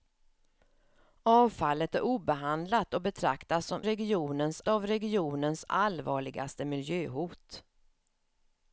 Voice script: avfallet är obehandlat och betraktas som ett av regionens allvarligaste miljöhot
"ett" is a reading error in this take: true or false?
true